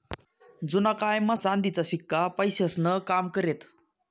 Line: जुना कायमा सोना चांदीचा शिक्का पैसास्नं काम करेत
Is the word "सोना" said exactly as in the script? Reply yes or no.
no